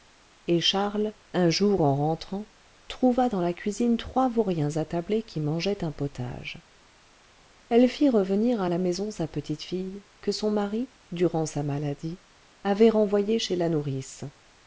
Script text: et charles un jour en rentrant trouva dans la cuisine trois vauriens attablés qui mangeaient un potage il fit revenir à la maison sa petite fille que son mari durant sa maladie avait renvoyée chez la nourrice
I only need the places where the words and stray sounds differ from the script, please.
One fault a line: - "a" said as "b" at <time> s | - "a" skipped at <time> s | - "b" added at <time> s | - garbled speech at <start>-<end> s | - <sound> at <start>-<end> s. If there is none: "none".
- "il" said as "elle" at 7.7 s